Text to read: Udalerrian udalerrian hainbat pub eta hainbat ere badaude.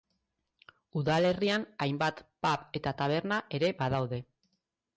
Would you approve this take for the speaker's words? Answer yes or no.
no